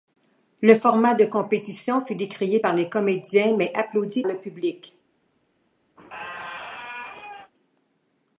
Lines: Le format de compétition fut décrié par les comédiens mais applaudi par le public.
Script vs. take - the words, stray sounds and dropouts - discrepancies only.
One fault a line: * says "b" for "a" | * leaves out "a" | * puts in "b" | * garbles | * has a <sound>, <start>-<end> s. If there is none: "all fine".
* leaves out "par"
* has a squeak, 6.0-7.5 s